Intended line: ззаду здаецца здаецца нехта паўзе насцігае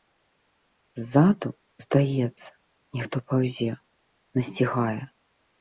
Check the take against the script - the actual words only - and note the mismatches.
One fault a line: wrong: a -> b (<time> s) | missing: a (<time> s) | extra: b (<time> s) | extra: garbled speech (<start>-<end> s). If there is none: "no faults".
missing: здаецца (2.5 s)